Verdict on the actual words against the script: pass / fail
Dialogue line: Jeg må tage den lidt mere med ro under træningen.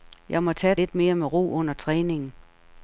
fail